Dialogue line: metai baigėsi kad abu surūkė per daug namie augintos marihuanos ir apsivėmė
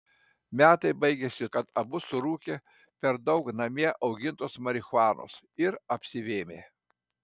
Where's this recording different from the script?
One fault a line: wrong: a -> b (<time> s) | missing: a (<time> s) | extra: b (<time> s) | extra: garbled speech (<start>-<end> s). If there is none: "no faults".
no faults